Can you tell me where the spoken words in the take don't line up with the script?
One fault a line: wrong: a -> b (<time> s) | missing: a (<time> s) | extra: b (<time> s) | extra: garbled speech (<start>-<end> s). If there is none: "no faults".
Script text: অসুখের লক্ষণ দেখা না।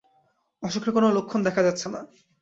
extra: কোনো (0.9 s)
extra: যাচ্ছে (1.6 s)